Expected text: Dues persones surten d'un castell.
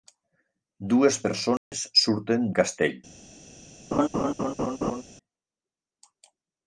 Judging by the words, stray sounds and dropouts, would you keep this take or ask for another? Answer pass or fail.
fail